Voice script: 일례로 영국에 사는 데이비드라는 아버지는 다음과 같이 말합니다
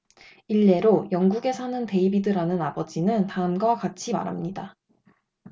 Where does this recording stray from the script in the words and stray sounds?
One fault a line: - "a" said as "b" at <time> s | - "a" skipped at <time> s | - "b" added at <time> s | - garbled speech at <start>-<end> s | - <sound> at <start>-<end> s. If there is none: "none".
none